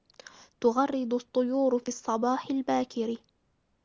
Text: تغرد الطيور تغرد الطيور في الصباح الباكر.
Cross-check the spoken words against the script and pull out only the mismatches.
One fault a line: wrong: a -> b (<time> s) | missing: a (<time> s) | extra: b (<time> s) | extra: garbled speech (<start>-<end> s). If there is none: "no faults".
missing: تغرد الطيور (1.8 s)